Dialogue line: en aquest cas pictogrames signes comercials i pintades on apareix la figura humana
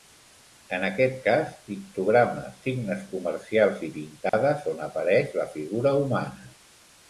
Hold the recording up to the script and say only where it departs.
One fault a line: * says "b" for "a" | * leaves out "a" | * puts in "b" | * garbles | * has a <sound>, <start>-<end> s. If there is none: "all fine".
* has a dropout, 4.3-4.3 s